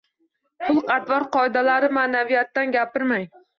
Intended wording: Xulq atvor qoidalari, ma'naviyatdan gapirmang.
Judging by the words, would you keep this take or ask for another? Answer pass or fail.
pass